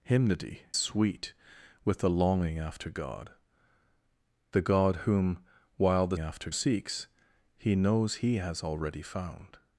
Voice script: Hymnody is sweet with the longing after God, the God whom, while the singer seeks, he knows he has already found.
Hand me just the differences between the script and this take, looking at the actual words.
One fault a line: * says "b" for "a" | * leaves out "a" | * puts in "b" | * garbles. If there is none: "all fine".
* leaves out "is"
* says "after" for "singer"